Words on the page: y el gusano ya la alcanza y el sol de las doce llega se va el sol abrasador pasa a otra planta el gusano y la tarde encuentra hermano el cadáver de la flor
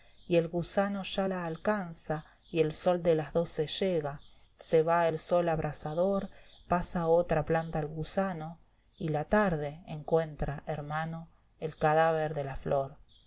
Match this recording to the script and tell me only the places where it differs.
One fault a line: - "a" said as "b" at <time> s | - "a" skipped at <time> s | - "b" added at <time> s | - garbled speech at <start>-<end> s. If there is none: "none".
none